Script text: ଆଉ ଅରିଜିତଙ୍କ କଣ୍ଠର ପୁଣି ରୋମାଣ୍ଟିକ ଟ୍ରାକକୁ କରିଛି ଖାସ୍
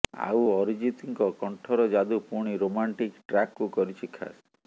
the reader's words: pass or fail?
fail